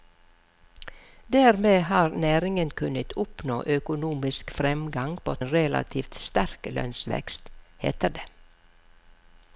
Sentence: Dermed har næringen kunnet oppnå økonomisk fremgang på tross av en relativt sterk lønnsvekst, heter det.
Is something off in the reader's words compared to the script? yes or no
yes